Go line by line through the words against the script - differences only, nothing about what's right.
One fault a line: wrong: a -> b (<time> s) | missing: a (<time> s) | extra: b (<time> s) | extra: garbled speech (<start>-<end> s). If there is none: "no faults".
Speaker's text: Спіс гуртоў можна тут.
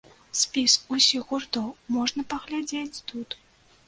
extra: усіх (0.9 s)
extra: паглядзець (2.3 s)